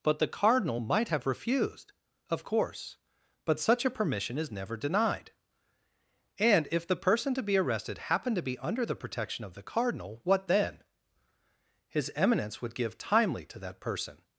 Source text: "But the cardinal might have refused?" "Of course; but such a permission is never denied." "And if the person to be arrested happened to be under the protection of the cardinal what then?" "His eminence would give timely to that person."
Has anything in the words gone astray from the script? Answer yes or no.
no